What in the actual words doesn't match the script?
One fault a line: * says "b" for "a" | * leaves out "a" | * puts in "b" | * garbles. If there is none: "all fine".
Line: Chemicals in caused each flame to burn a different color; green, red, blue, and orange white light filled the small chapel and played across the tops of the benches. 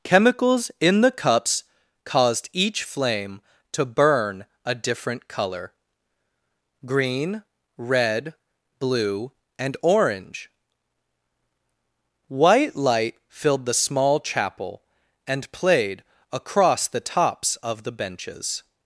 * puts in "the cups"